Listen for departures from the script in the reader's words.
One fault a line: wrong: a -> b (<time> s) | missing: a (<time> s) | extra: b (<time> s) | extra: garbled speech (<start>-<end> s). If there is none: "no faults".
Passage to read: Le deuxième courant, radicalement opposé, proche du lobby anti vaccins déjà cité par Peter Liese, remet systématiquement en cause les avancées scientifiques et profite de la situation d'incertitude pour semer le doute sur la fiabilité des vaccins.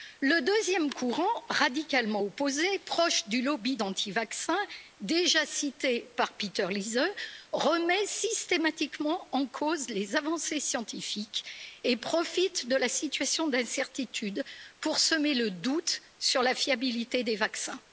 no faults